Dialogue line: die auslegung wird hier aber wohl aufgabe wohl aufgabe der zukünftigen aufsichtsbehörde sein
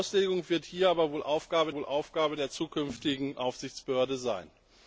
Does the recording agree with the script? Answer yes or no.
yes